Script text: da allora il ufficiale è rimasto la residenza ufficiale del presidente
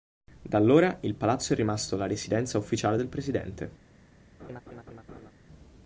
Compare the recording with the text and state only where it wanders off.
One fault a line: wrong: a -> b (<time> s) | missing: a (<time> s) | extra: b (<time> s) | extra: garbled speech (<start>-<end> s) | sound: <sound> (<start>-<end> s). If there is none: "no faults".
wrong: ufficiale -> palazzo (1.1 s)
sound: laugh (4.4-5.3 s)